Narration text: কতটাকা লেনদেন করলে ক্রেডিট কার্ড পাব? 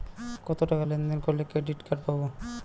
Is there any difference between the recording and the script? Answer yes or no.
no